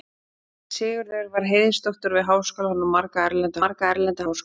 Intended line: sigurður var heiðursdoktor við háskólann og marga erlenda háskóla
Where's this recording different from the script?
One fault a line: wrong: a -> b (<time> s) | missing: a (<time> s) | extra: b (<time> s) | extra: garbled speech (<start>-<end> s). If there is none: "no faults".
extra: marga erlenda (3.6 s)